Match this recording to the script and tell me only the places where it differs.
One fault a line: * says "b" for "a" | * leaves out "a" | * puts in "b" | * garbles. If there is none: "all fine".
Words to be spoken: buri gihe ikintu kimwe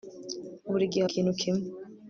all fine